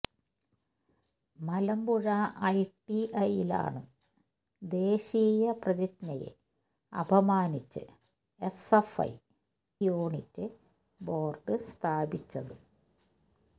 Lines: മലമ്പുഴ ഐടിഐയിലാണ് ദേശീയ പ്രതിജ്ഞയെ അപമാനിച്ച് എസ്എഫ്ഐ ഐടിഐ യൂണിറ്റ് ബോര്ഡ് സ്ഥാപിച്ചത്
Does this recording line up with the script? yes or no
no